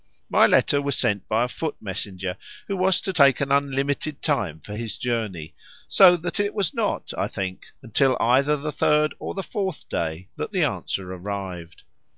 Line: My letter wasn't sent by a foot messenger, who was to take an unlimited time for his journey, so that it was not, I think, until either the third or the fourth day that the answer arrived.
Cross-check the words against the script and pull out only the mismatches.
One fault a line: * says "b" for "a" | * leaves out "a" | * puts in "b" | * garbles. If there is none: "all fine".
* says "was" for "wasn't"